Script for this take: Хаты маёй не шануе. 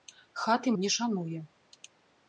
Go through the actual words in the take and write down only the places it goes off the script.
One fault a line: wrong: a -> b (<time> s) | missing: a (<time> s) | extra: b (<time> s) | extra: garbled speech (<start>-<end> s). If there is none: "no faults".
missing: маёй (0.7 s)